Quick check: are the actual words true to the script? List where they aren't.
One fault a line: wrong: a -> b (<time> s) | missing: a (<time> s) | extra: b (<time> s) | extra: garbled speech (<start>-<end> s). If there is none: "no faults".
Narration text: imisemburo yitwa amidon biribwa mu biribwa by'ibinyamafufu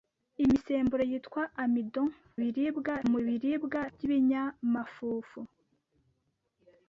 no faults